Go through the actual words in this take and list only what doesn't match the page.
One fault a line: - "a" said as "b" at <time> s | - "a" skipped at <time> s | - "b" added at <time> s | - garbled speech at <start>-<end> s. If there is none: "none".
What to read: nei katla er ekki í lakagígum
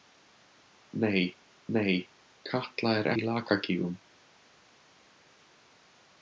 - "nei" added at 1.8 s
- "ekki" skipped at 3.1 s